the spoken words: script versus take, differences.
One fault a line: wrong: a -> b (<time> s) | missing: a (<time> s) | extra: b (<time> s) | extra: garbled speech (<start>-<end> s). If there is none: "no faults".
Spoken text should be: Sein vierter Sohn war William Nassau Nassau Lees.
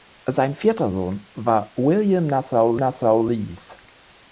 no faults